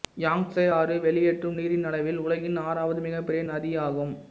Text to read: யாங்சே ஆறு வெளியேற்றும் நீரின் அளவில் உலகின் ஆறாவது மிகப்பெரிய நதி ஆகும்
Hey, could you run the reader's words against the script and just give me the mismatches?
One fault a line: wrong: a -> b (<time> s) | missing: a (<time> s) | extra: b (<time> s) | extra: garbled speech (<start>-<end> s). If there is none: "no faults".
no faults